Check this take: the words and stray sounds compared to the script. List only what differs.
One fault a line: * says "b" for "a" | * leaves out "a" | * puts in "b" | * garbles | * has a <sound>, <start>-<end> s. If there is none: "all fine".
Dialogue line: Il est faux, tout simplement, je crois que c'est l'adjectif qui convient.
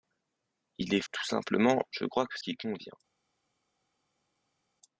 * leaves out "faux"
* leaves out "c'est l'adjectif"